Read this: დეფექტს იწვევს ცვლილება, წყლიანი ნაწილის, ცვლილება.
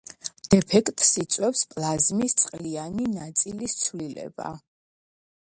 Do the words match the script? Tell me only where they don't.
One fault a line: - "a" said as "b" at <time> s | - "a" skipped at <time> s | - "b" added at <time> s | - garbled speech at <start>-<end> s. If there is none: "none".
- "ცვლილება" said as "პლაზმის" at 1.7 s